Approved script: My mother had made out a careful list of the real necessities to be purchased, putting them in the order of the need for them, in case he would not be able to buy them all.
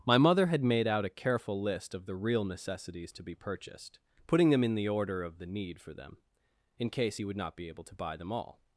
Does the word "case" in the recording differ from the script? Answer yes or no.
no